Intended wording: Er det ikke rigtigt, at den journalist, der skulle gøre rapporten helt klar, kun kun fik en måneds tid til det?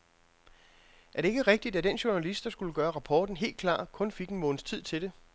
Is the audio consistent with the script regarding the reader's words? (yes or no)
no